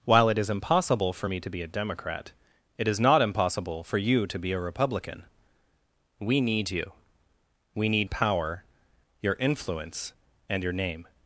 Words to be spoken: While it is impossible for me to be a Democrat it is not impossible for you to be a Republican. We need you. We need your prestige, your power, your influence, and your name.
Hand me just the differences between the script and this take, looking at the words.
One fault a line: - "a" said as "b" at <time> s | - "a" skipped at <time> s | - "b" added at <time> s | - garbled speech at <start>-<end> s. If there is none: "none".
- "your prestige your" skipped at 8.1 s